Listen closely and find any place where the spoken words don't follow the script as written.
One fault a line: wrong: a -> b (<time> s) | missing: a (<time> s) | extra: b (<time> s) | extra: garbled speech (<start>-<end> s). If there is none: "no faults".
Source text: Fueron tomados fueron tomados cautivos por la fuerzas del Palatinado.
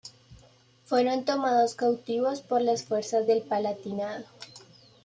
missing: fueron tomados (1.8 s)
wrong: la -> las (2.6 s)